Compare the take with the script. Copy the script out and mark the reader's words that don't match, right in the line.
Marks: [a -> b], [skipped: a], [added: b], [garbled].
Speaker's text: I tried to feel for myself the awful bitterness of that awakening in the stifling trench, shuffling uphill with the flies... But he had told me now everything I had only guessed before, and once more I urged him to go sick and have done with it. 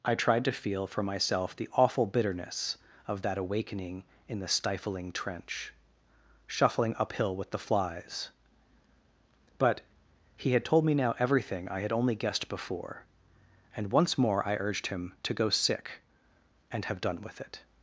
I tried to feel for myself the awful bitterness of that awakening in the stifling trench, shuffling uphill with the flies... But he had told me now everything I had only guessed before, and once more I urged him to go sick and have done with it.